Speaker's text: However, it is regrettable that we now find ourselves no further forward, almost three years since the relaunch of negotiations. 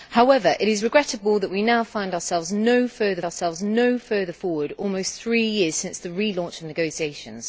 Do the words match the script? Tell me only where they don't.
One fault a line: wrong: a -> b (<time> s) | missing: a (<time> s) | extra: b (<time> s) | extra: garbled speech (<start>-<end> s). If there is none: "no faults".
extra: ourselves no further (3.2 s)